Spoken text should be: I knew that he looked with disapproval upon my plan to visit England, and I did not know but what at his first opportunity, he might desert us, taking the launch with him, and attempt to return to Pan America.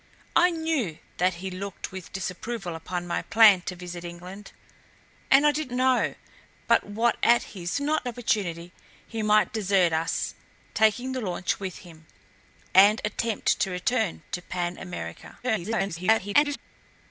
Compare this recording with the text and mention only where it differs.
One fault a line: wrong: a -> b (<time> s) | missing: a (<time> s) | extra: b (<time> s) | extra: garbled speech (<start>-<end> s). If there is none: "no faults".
missing: not (5.7 s)
wrong: first -> not (7.8 s)
extra: garbled speech (15.4-16.6 s)